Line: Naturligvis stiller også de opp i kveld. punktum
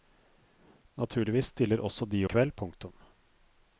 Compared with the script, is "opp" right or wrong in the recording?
wrong